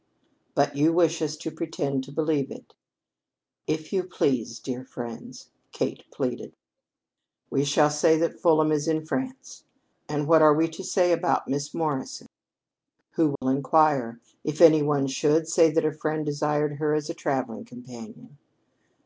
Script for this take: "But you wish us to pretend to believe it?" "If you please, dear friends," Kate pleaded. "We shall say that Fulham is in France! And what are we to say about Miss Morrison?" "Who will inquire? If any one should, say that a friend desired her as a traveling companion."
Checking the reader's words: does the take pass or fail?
pass